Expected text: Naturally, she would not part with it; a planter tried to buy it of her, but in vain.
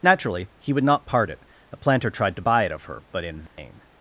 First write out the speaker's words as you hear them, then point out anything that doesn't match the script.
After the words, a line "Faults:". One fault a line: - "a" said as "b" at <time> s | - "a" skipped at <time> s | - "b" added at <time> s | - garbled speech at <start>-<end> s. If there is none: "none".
Naturally, he would not part it; a planter tried to buy it of her, but in vain.
Faults:
- "she" said as "he" at 0.6 s
- "with" skipped at 1.3 s